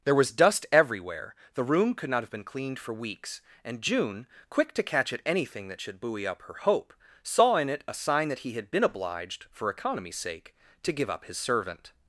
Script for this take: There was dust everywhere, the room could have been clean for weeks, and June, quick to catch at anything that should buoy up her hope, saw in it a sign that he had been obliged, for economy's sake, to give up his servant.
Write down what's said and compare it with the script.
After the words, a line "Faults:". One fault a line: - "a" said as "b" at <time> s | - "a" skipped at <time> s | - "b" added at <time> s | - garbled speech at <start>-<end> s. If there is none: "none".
There was dust everywhere, the room could not have been cleaned for weeks, and June, quick to catch at anything that should buoy up her hope, saw in it a sign that he had been obliged, for economy's sake, to give up his servant.
Faults:
- "not" added at 2.1 s
- "clean" said as "cleaned" at 2.4 s